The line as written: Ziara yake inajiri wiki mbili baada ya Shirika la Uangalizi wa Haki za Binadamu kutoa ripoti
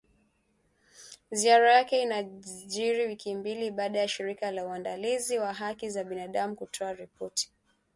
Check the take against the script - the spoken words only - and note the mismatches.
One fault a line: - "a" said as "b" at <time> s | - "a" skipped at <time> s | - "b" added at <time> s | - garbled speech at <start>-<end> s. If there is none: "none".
none